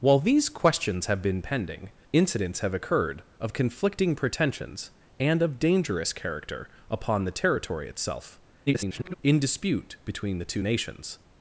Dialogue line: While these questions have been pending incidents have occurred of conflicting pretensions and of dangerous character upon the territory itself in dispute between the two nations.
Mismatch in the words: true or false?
true